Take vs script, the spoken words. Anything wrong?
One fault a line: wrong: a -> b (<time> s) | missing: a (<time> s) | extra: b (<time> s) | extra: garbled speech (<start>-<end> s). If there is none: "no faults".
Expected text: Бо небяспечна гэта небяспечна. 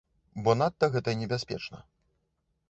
wrong: небяспечна -> надта (0.6 s)